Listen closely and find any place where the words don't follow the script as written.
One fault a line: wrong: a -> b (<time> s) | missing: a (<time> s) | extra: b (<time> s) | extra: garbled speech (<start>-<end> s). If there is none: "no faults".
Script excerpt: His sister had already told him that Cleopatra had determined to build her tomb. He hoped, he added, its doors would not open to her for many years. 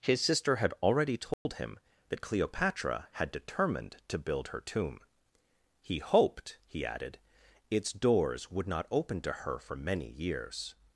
no faults